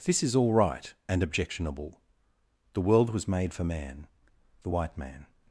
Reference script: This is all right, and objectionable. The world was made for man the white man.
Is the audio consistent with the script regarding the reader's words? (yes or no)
yes